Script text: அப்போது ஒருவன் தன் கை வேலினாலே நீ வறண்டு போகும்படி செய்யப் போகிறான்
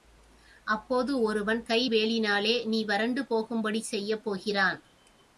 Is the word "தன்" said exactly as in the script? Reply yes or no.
no